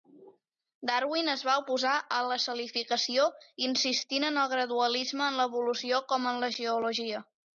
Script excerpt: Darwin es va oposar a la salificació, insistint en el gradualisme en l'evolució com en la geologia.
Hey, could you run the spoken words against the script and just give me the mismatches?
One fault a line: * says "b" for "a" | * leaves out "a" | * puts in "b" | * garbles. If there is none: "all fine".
all fine